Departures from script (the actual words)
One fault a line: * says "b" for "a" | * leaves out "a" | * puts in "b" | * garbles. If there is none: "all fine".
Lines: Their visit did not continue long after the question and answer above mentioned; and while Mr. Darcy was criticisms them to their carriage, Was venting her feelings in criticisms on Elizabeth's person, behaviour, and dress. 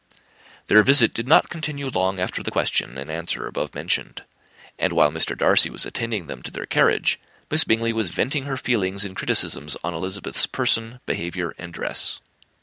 * says "attending" for "criticisms"
* puts in "Miss Bingley"